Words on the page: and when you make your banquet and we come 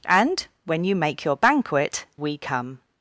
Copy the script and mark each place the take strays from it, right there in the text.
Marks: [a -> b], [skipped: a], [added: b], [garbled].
and when you make your banquet [skipped: and] we come